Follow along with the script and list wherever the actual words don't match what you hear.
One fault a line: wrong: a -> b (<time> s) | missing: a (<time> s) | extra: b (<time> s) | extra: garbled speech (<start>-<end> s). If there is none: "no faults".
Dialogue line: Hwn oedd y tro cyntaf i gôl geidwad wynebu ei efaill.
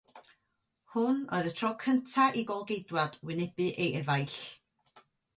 no faults